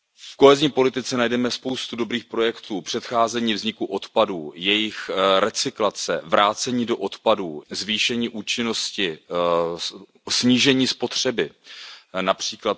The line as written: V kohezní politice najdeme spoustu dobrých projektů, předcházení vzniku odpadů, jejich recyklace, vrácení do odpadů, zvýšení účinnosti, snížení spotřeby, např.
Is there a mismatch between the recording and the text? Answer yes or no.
no